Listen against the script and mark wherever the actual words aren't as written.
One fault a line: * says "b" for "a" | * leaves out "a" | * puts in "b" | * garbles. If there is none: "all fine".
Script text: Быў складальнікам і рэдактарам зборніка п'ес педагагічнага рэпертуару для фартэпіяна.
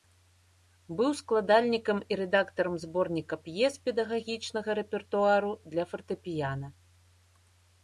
all fine